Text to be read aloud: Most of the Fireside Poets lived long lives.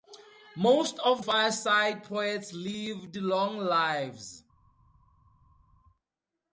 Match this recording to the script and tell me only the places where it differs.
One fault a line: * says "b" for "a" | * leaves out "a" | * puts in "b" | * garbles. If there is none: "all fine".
* leaves out "the"